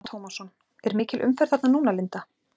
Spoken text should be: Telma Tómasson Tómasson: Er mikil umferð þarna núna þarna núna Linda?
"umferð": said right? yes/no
yes